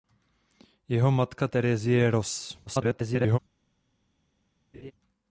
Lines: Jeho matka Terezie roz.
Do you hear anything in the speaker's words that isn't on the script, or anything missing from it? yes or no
yes